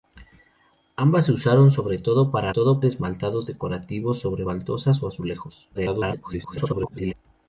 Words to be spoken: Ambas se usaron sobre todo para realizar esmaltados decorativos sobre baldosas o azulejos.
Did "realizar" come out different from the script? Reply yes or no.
yes